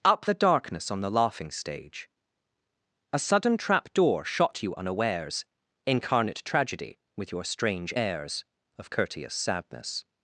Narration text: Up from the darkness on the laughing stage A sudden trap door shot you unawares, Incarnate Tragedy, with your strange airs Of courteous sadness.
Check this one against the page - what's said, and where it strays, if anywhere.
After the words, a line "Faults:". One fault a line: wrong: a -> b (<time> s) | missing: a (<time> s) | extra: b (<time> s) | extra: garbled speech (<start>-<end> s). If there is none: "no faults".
Up the darkness on the laughing stage A sudden trap door shot you unawares, Incarnate Tragedy, with your strange airs Of courteous sadness.
Faults:
missing: from (0.2 s)